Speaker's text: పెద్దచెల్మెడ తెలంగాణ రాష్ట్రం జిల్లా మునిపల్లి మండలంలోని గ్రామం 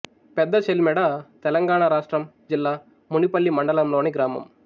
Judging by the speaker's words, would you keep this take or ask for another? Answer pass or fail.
pass